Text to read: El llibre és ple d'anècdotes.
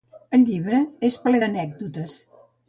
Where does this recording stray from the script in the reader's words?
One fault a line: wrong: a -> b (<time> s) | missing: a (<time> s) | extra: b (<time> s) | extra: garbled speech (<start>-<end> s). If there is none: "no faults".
no faults